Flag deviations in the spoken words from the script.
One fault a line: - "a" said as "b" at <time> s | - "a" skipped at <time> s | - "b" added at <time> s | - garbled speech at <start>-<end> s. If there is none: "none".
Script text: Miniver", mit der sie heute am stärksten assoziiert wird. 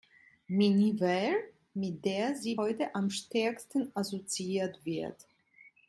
none